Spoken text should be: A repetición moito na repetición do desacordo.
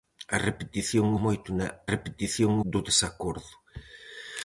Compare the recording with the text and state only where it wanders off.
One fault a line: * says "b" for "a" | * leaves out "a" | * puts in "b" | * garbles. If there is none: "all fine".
all fine